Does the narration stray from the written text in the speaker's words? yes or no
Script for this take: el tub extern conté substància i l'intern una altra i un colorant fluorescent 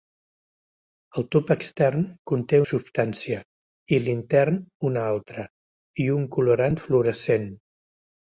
no